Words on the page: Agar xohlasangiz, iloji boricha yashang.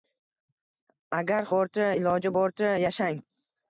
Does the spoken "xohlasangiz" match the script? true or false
false